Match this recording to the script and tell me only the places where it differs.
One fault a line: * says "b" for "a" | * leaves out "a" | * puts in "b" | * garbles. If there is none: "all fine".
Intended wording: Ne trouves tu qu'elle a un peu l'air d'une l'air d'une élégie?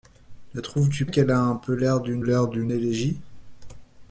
all fine